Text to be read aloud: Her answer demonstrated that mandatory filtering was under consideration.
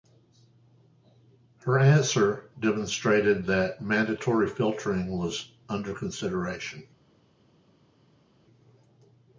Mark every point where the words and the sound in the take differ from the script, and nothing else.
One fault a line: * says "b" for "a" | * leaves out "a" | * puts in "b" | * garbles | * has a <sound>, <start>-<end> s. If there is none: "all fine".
all fine